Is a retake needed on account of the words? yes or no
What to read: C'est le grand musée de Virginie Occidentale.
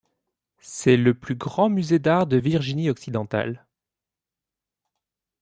yes